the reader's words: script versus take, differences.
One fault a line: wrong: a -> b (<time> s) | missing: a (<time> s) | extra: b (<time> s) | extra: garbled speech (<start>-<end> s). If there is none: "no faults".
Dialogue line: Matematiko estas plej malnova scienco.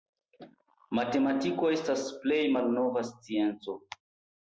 no faults